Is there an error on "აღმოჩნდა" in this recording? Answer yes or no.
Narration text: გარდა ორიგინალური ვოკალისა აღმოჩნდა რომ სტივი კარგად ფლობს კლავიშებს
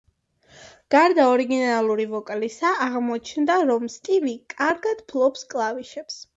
no